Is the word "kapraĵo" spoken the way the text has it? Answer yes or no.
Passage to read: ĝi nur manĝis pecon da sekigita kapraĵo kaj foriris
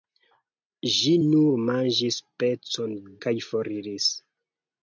no